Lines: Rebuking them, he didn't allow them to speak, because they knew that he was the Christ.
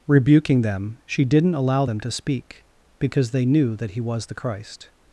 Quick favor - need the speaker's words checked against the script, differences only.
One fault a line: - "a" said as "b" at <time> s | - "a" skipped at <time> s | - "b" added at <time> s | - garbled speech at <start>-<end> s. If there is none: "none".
- "he" said as "she" at 1.1 s